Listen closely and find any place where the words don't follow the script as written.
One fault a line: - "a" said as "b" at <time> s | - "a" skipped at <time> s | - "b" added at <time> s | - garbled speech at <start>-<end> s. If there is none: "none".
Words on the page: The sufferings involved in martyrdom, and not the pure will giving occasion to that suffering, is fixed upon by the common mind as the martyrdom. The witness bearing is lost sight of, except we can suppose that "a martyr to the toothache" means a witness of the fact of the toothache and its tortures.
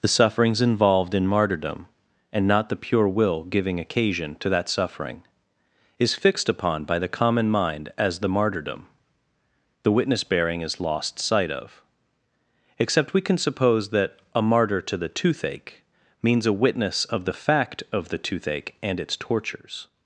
none